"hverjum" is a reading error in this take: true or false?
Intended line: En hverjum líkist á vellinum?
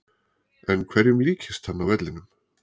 false